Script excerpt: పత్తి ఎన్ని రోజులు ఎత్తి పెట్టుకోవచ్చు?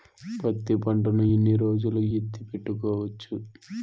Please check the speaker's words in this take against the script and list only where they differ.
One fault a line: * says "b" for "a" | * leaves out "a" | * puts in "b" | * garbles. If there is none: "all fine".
* puts in "పంటను"